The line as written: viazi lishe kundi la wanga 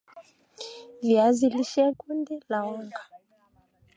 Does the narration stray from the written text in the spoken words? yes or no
no